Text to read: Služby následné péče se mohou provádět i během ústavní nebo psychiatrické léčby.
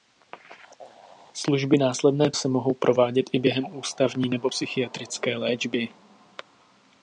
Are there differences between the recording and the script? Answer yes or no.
yes